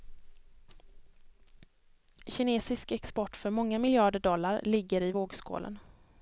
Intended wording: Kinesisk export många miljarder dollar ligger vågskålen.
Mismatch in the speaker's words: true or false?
true